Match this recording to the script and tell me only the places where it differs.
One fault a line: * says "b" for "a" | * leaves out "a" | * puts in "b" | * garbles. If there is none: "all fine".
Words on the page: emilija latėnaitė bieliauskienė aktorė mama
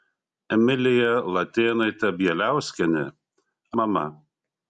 * leaves out "aktorė"